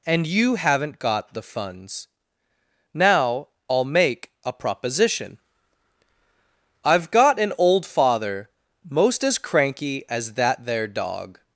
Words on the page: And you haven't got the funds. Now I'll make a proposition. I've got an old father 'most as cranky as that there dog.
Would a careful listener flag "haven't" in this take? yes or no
no